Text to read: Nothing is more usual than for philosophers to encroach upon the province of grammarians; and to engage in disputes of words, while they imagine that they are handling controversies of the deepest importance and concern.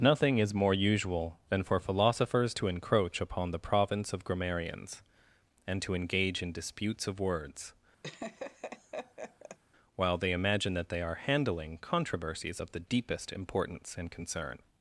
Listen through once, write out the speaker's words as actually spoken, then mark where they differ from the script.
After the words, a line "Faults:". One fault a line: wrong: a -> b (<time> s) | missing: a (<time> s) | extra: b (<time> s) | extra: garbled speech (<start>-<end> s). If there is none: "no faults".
Nothing is more usual than for philosophers to encroach upon the province of grammarians; and to engage in disputes of words, while they imagine that they are handling controversies of the deepest importance and concern.
Faults:
no faults